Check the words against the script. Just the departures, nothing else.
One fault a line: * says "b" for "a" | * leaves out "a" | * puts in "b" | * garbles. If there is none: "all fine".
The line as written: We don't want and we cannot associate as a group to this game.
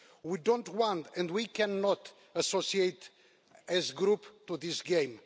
all fine